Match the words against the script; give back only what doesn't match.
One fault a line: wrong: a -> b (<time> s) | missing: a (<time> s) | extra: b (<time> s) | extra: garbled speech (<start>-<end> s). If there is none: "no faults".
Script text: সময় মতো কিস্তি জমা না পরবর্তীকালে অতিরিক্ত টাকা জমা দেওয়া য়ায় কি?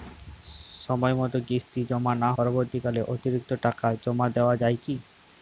no faults